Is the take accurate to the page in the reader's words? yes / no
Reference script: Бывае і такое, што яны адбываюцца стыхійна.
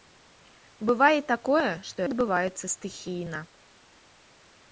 no